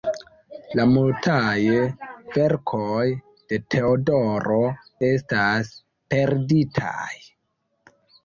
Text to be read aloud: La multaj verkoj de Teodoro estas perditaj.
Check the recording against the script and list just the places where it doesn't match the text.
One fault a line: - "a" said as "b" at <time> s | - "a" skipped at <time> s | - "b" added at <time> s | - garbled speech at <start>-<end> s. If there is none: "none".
none